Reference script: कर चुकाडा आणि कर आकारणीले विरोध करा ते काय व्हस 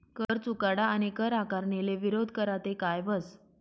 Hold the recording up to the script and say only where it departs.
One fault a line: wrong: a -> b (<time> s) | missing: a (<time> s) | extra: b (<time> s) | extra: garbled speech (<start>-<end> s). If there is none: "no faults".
no faults